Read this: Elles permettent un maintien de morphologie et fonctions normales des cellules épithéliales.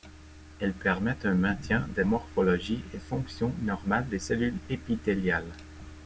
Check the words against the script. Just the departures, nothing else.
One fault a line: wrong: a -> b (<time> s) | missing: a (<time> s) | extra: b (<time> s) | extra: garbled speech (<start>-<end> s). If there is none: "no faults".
no faults